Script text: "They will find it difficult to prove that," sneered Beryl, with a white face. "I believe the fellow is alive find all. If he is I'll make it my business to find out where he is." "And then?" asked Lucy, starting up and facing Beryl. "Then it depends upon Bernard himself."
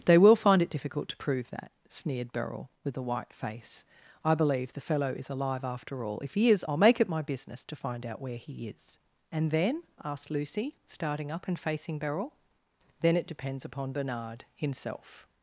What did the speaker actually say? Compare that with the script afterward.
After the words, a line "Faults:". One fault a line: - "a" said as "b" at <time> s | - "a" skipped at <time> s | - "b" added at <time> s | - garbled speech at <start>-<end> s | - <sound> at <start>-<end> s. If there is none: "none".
"They will find it difficult to prove that," sneered Beryl, with a white face. "I believe the fellow is alive after all. If he is I'll make it my business to find out where he is." "And then?" asked Lucy, starting up and facing Beryl. "Then it depends upon Bernard himself."
Faults:
- "find" said as "after" at 5.6 s